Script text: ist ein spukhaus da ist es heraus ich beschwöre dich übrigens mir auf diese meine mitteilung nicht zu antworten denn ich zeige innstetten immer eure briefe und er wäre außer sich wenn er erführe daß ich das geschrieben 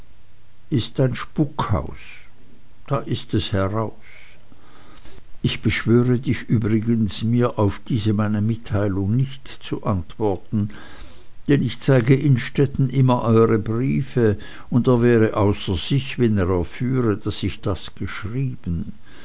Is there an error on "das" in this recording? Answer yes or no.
no